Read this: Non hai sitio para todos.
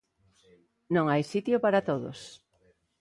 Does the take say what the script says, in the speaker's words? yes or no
yes